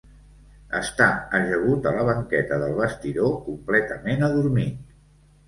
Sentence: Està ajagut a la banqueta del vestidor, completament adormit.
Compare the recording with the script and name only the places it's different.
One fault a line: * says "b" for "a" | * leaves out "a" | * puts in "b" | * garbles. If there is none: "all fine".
all fine